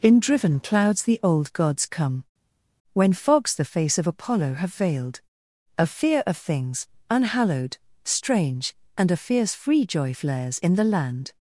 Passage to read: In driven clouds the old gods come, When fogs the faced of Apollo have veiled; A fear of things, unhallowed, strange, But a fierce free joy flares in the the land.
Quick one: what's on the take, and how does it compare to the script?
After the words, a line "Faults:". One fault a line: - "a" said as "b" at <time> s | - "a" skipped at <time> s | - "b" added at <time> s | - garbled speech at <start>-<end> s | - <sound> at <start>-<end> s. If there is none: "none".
In driven clouds the old gods come, When fogs the face of Apollo have veiled; A fear of things, unhallowed, strange, And a fierce free joy flares in the land.
Faults:
- "faced" said as "face" at 3.6 s
- "But" said as "And" at 8.9 s
- "the" skipped at 10.9 s